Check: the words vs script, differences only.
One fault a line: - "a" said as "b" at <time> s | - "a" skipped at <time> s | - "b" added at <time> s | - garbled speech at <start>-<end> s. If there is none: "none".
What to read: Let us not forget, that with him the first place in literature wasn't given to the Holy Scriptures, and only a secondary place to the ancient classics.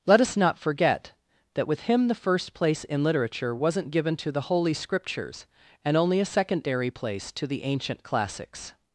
none